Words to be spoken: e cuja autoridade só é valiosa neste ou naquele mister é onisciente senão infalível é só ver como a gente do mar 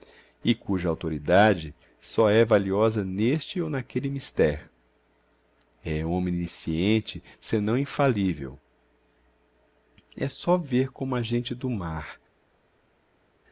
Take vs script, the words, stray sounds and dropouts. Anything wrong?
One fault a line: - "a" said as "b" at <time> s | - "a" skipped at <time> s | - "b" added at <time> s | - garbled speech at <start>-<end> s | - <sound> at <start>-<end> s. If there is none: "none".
none